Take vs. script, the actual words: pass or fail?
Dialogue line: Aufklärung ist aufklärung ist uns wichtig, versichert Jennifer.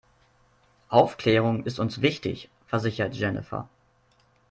fail